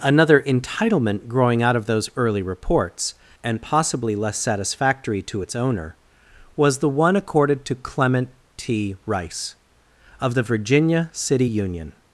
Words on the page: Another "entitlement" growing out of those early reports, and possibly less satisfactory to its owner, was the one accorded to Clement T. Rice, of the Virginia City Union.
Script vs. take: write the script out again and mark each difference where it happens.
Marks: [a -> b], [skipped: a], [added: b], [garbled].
Another "entitlement" growing out of those early reports, and possibly less satisfactory to its owner, was the one accorded to Clement T. Rice, of the Virginia City Union.